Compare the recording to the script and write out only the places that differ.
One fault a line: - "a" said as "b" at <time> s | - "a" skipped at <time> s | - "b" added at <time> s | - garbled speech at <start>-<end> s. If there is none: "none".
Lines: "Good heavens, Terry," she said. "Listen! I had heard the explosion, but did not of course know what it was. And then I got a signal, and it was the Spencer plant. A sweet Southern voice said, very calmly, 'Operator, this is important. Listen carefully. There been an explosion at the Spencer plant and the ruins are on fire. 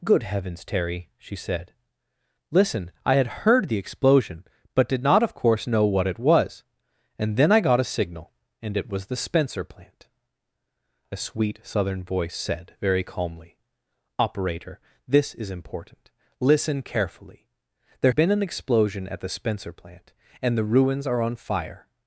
none